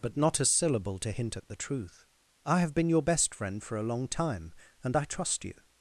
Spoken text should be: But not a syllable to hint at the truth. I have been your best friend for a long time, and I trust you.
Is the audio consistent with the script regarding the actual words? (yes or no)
yes